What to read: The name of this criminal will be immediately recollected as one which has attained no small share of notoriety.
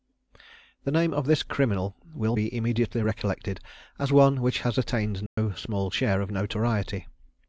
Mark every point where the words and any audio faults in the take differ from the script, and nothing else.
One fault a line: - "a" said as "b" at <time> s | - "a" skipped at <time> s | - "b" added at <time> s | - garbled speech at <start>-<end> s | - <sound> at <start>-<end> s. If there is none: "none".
- dropout at 5.3-5.4 s